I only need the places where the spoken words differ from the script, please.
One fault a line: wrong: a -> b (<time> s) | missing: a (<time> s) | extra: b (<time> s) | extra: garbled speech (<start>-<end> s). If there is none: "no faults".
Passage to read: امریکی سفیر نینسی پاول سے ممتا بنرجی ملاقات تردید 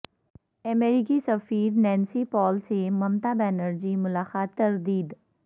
no faults